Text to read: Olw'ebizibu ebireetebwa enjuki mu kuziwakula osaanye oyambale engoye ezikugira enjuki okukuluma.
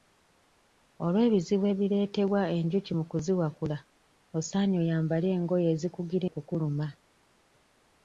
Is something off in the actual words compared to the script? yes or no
yes